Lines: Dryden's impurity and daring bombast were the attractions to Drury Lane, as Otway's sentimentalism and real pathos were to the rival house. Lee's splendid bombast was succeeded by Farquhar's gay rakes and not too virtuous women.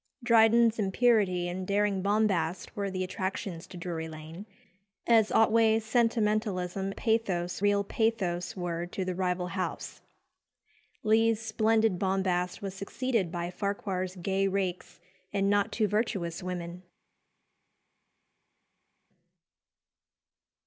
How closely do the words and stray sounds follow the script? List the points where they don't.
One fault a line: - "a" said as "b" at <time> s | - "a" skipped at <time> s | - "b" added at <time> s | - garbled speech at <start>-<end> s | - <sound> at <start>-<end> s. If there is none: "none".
- "and" said as "pathos" at 6.9 s